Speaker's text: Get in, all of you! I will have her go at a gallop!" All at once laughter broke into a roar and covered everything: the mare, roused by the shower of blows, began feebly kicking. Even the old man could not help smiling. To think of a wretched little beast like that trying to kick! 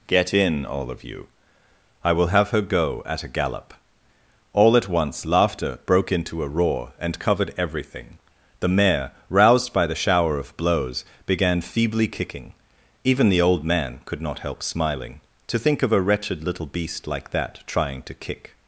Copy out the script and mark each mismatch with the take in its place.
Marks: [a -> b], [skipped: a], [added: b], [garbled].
Get in, all of you! I will have her go at a gallop!" All at once laughter broke into a roar and covered everything: the mare, roused by the shower of blows, began feebly kicking. Even the old man could not help smiling. To think of a wretched little beast like that trying to kick!